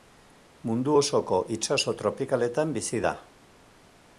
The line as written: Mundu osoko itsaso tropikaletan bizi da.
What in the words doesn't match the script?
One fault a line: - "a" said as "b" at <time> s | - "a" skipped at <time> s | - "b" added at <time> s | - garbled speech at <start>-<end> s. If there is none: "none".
none